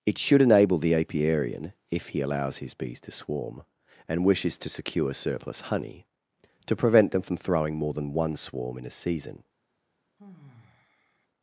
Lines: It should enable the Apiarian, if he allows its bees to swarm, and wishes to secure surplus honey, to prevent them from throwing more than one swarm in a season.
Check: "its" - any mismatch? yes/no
yes